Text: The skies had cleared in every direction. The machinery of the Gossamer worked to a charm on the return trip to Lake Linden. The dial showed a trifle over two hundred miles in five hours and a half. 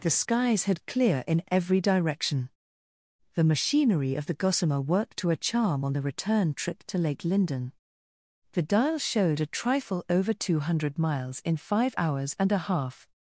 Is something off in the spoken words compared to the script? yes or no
yes